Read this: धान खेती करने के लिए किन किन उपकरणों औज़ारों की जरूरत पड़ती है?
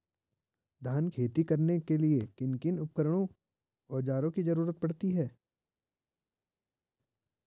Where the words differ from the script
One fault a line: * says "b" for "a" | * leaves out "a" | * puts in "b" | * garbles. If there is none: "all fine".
all fine